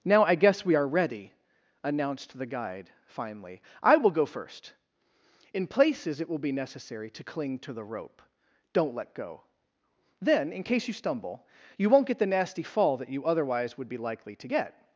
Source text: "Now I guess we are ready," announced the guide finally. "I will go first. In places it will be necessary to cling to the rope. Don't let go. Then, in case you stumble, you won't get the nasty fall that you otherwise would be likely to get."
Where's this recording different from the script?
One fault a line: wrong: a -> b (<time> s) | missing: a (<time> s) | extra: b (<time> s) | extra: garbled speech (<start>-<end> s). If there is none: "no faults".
no faults